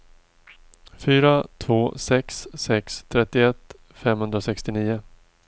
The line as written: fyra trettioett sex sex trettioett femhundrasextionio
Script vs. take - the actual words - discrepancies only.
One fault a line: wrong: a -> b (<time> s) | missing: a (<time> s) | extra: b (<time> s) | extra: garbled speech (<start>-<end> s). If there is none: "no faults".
wrong: trettioett -> två (1.6 s)